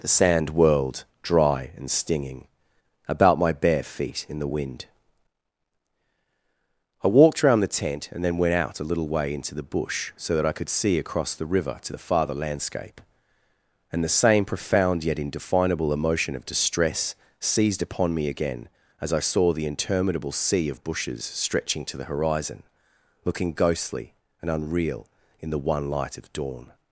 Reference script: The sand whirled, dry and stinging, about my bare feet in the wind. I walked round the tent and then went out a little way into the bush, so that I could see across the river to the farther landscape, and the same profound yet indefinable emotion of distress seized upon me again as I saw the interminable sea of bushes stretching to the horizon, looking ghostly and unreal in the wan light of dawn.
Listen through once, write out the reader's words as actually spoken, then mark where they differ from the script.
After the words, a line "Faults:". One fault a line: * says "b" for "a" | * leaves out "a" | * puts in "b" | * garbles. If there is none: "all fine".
The sand whirled, dry and stinging, about my bare feet in the wind. I walked round the tent and then went out a little way into the bush, so that I could see across the river to the farther landscape, and the same profound yet indefinable emotion of distress seized upon me again as I saw the interminable sea of bushes stretching to the horizon, looking ghostly and unreal in the one light of dawn.
Faults:
* says "one" for "wan"